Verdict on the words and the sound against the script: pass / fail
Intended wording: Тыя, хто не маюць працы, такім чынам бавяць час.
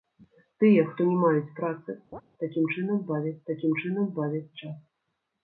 fail